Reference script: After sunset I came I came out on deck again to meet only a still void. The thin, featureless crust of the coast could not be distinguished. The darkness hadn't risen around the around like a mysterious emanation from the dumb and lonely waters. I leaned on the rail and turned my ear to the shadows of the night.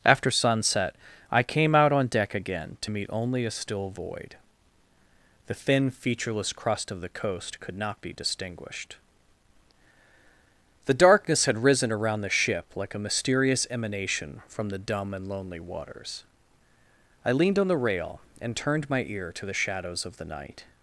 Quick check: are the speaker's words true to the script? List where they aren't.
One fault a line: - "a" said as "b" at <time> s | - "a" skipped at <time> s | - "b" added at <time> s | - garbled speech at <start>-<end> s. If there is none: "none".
- "I came" skipped at 1.8 s
- "hadn't" said as "had" at 11.5 s
- "around" said as "ship" at 12.3 s